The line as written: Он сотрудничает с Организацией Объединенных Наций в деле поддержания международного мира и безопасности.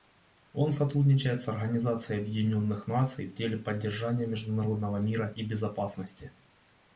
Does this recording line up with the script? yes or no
yes